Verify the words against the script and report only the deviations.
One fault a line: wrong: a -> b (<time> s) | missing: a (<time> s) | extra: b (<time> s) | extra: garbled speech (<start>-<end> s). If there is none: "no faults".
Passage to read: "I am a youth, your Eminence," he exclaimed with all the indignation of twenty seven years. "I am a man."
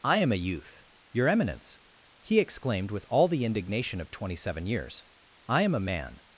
no faults